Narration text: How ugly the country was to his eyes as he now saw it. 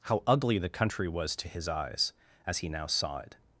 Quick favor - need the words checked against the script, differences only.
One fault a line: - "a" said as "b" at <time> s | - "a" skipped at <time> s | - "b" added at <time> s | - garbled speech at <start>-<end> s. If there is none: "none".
none